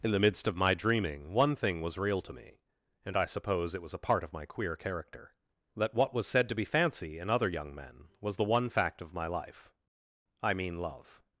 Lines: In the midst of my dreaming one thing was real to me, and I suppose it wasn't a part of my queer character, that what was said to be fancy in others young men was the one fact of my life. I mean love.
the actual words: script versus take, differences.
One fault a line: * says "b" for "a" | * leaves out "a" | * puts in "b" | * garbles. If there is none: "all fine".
* says "was" for "wasn't"
* says "other" for "others"